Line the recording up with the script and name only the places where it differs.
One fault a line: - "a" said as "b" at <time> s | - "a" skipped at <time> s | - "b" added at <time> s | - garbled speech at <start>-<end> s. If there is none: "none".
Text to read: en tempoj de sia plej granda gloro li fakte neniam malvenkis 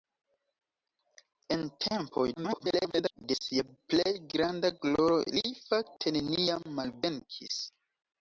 - garbled speech at 2.4-3.2 s